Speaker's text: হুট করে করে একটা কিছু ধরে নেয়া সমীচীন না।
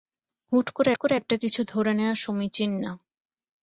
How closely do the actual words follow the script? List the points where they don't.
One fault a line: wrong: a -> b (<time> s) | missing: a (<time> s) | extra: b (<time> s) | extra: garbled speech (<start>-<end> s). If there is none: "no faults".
no faults